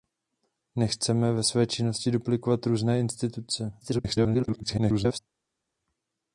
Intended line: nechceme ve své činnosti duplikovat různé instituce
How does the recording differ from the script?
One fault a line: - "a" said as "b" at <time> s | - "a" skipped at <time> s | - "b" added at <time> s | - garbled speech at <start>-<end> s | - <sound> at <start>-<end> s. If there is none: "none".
- garbled speech at 3.8-5.2 s